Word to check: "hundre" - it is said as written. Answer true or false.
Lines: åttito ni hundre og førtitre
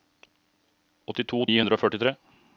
true